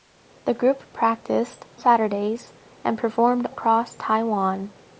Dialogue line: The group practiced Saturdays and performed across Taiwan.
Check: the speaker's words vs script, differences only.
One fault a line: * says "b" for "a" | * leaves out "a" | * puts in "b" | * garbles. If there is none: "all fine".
all fine